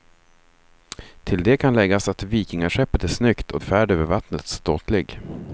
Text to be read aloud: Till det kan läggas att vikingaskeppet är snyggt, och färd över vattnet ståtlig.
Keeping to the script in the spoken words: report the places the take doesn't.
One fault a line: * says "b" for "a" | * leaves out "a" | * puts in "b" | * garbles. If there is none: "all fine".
all fine